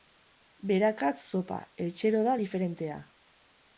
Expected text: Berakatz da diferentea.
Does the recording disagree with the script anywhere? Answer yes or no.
yes